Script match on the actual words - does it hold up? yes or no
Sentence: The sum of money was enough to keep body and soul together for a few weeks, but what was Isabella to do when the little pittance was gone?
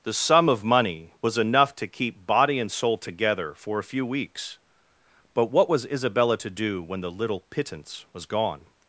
yes